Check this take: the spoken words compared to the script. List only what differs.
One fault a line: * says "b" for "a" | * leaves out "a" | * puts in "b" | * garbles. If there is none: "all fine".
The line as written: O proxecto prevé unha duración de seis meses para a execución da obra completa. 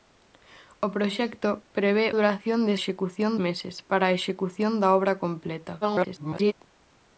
* leaves out "unha"
* says "execución" for "seis"
* garbles